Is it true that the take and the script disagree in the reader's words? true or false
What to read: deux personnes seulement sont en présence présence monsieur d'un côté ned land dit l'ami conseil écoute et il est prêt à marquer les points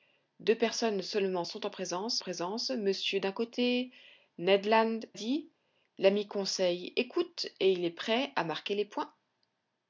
false